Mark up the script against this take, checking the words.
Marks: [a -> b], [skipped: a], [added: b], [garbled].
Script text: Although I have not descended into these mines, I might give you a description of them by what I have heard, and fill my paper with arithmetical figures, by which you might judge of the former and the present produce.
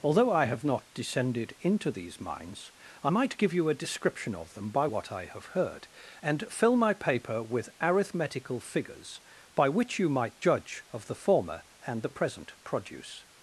Although I have not descended into these mines, I might give you a description of them by what I have heard, and fill my paper with arithmetical figures, by which you might judge of the former and the present produce.